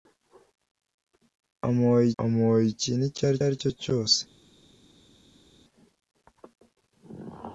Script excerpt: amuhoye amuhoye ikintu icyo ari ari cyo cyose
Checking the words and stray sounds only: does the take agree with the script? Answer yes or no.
yes